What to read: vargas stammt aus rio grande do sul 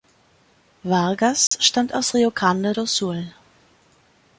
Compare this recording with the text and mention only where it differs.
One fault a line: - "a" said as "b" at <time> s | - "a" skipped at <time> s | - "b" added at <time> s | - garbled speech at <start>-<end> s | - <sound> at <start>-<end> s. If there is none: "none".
- dropout at 1.5-1.5 s